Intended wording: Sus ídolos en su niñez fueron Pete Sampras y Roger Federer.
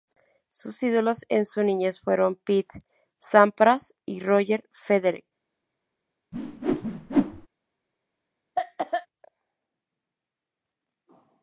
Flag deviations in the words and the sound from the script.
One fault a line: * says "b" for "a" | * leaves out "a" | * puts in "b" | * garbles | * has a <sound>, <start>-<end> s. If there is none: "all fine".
* has a whoosh, 6.3-7.5 s
* has a cough, 8.6-9.1 s